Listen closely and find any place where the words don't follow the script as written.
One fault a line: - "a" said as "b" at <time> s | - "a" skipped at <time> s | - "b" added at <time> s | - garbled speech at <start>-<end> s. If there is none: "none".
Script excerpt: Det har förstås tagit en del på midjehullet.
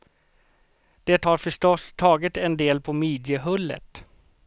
none